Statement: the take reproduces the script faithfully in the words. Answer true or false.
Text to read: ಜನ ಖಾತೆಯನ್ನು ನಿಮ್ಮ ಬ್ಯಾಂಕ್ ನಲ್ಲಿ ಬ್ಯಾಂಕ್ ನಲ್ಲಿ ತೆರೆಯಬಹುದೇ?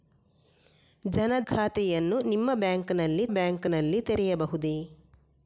true